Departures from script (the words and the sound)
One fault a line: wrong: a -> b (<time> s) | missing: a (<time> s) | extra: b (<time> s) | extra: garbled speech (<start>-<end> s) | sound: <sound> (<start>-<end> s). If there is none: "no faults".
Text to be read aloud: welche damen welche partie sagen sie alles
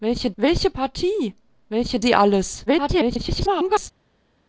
missing: damen (0.3 s)
wrong: sagen -> welche (1.7 s)
extra: garbled speech (2.7-3.9 s)